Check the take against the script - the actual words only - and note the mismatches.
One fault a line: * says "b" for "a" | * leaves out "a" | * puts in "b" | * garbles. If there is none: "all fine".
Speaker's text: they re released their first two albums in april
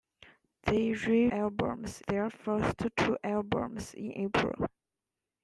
* says "albums" for "released"